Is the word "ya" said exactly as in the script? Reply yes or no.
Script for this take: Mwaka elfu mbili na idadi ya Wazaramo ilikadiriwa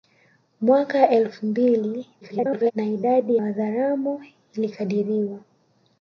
no